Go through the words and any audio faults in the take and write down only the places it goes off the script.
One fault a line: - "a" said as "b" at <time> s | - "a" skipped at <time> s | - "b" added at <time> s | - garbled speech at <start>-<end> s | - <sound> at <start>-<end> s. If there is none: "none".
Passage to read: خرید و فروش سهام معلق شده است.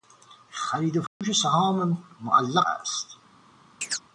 - dropout at 1.1-1.2 s
- "شده" skipped at 2.7 s
- chirp at 3.8-4.0 s